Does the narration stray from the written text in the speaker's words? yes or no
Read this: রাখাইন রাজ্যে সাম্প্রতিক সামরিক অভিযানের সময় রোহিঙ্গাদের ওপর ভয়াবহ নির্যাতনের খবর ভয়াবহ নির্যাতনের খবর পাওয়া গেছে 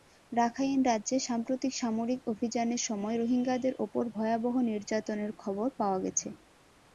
yes